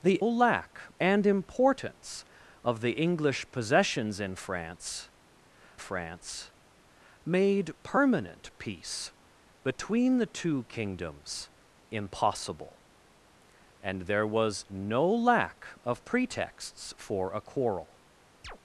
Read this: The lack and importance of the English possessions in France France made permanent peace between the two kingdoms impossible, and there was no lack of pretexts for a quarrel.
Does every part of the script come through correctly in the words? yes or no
yes